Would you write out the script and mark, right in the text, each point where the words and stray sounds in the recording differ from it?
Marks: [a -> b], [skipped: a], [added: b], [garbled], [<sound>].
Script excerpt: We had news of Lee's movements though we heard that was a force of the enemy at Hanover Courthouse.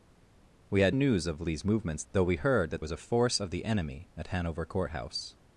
We had news of Lee's movements though we heard that was a force of the enemy at Hanover Courthouse.